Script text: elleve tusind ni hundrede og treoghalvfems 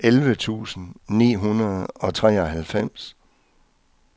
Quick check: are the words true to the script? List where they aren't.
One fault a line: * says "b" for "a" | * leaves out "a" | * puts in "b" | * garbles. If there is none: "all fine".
all fine